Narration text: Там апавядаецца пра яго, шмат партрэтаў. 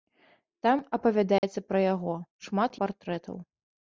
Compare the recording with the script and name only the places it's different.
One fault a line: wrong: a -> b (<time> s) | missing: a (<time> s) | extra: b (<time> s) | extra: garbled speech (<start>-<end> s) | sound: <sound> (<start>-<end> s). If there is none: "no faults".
sound: dropout (1.4-1.4 s)